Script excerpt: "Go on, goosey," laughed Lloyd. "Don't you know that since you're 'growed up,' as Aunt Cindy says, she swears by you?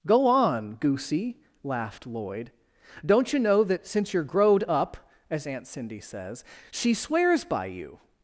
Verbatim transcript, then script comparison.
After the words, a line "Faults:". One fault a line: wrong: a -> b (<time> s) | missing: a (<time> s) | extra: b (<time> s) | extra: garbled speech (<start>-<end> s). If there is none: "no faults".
"Go on, goosey," laughed Lloyd. "Don't you know that since you're 'growed up,' as Aunt Cindy says, she swears by you?
Faults:
no faults